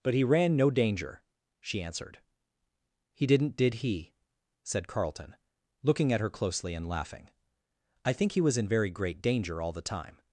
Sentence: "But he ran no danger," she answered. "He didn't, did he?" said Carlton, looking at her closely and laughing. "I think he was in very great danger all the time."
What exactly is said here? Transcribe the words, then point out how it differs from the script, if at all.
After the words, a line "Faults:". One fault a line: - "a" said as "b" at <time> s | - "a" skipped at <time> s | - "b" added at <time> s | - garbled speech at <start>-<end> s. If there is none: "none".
"But he ran no danger," she answered. "He didn't, did he?" said Carlton, looking at her closely and laughing. "I think he was in very great danger all the time."
Faults:
none